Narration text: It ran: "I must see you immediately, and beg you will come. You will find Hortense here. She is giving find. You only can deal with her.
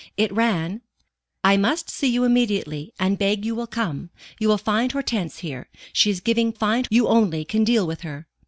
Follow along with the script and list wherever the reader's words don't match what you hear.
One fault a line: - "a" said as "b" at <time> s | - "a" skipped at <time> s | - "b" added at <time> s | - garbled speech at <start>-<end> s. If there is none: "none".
none